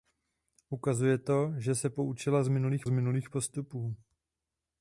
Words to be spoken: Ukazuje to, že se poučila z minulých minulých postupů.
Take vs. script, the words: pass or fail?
pass